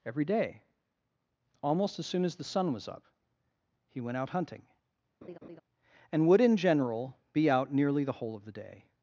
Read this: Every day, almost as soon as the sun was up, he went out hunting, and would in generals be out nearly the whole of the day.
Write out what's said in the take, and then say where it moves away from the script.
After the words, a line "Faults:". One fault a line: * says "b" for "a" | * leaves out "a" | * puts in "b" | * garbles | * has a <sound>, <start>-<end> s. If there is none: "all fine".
Every day, almost as soon as the sun was up, he went out hunting, and would in general be out nearly the whole of the day.
Faults:
* has a laugh, 5.2-5.6 s
* says "general" for "generals"